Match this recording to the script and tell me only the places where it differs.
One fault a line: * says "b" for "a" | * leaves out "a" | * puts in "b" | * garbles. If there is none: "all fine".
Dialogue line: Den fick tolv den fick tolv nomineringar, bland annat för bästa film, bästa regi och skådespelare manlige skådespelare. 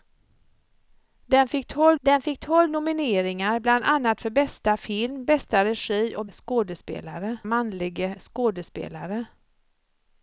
all fine